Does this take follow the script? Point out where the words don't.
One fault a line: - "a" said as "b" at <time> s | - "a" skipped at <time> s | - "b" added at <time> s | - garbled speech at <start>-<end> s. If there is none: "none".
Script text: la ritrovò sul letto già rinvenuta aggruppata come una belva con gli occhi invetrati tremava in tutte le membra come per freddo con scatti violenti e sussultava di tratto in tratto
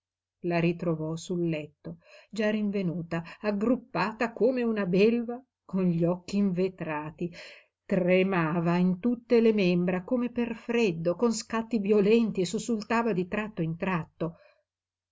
none